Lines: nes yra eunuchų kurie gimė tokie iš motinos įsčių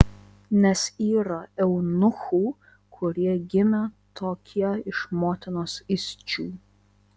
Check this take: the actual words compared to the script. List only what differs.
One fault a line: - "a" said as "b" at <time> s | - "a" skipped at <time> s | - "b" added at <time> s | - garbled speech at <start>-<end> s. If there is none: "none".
none